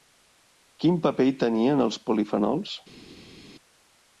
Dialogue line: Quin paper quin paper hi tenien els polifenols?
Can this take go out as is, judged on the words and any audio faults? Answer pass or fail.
fail